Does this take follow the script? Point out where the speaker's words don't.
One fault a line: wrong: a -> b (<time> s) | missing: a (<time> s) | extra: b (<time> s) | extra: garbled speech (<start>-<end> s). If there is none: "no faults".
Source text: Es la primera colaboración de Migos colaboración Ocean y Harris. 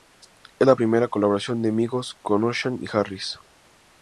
wrong: colaboración -> con (2.2 s)